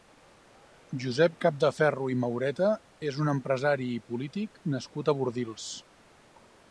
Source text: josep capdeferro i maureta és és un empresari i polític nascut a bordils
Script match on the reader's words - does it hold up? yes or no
no